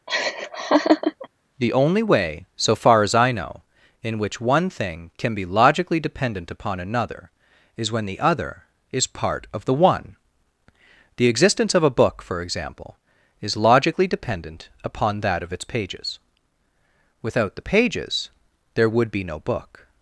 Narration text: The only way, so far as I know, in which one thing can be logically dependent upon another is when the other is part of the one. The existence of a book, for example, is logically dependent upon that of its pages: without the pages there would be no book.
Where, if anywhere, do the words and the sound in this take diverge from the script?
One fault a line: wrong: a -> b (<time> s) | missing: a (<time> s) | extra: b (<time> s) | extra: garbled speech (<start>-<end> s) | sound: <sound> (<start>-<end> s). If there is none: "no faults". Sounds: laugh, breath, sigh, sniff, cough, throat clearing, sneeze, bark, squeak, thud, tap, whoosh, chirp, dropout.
sound: laugh (0.1-1.3 s)